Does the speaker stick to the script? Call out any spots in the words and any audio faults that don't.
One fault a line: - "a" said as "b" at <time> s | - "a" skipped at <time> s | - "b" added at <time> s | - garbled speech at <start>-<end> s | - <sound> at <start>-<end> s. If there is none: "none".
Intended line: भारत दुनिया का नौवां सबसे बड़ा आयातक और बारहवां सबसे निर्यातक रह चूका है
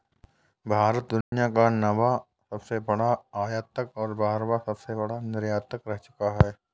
- dropout at 1.2-1.3 s
- "बड़ा" added at 5.0 s